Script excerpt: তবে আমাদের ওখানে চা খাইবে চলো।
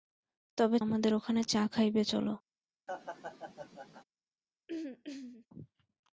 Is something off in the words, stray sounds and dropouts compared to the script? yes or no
yes